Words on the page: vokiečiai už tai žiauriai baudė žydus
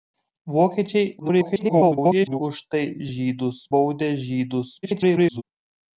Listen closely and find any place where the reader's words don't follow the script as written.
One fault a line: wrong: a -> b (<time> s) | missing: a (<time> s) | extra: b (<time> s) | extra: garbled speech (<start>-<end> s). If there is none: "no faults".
extra: garbled speech (1.2-2.4 s)
wrong: žiauriai -> žydus (3.1 s)
extra: garbled speech (4.8-5.4 s)